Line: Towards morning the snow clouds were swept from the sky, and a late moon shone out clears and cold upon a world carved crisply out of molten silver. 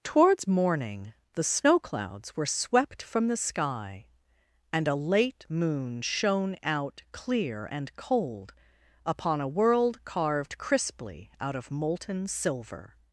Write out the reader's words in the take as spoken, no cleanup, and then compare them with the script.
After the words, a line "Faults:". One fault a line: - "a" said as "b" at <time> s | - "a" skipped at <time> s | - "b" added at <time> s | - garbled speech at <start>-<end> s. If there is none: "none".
Towards morning the snow clouds were swept from the sky, and a late moon shone out clear and cold upon a world carved crisply out of molten silver.
Faults:
- "clears" said as "clear" at 7.1 s